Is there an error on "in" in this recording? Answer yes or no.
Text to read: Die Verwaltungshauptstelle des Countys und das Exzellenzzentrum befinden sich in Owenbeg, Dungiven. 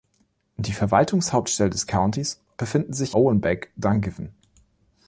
yes